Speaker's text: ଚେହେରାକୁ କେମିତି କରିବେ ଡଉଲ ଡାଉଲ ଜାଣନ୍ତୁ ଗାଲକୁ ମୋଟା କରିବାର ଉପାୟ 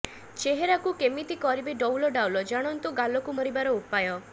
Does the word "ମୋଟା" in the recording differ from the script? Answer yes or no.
yes